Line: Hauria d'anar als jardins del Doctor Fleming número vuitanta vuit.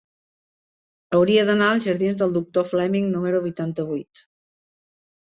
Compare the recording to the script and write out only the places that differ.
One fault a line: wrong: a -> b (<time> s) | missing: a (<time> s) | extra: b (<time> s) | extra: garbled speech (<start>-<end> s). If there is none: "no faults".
no faults